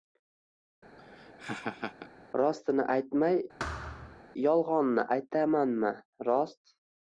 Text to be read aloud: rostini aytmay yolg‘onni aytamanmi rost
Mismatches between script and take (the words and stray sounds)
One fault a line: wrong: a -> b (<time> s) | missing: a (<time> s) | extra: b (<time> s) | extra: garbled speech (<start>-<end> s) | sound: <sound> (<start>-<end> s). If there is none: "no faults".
sound: laugh (1.0-2.1 s)
sound: thud (3.6-4.2 s)